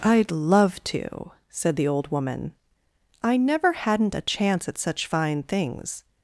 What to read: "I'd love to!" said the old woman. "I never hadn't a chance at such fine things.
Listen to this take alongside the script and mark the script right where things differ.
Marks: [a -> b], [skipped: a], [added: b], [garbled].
"I'd love to!" said the old woman. "I never hadn't a chance at such fine things.